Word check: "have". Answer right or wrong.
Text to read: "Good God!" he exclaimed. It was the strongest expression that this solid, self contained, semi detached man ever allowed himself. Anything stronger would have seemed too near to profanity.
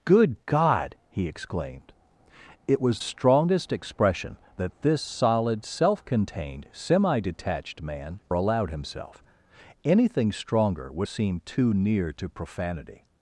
wrong